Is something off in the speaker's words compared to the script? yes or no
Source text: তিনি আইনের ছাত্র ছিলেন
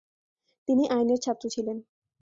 no